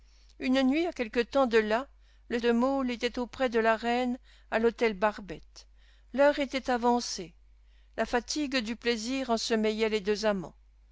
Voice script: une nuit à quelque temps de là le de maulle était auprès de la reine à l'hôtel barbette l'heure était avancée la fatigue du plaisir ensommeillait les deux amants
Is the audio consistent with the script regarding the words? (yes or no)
yes